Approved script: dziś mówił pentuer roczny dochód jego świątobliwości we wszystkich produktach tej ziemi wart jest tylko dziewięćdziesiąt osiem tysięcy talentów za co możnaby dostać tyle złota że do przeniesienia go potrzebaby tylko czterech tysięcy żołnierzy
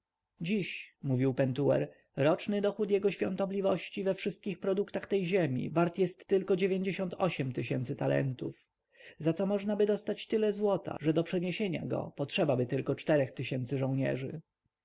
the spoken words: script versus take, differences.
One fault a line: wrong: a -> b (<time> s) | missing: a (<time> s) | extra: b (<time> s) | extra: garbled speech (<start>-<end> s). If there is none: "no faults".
no faults